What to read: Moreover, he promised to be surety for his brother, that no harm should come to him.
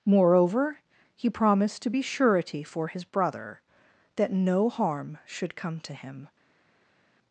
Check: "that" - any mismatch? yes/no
no